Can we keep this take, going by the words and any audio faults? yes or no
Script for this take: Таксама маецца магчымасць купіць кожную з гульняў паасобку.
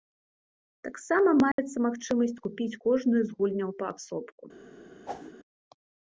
no